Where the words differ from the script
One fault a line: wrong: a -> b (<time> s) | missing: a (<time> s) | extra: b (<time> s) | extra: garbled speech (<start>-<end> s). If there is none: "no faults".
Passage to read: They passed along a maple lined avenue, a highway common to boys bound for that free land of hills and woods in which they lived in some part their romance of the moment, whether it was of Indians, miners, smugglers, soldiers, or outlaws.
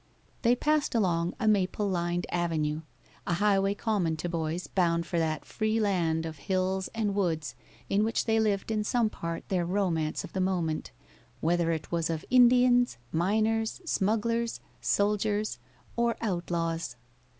no faults